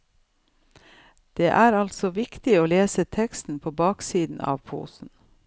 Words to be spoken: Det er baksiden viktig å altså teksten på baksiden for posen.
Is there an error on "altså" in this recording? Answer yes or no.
yes